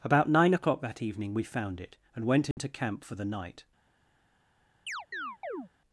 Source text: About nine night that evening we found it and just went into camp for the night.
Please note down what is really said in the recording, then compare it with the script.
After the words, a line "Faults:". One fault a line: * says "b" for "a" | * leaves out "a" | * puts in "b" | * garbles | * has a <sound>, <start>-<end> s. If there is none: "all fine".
About nine o'clock that evening we found it and went into camp for the night.
Faults:
* says "o'clock" for "night"
* leaves out "just"
* has a dropout, 2.5-2.6 s
* has a chirp, 4.9-5.7 s